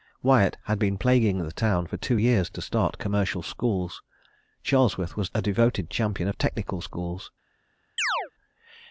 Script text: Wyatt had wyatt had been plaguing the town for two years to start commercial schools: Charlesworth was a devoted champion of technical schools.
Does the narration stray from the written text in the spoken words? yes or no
yes